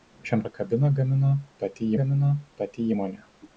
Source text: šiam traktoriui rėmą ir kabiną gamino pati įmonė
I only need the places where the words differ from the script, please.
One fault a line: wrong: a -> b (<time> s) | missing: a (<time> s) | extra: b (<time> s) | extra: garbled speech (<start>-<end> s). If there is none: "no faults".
wrong: traktoriui rėmą ir kabiną -> ir kabiną gamino pati (0.5 s)